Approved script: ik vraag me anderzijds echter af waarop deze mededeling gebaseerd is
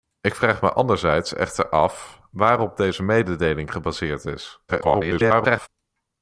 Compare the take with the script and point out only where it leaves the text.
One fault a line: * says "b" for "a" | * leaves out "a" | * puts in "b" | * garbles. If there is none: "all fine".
* garbles